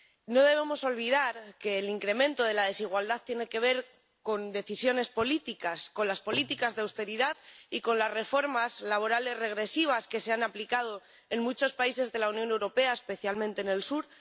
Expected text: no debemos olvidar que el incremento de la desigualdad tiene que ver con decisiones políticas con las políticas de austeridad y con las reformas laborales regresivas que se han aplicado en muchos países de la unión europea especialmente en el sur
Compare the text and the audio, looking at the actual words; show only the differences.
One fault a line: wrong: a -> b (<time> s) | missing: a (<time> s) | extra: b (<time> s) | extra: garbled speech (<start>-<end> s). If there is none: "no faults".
no faults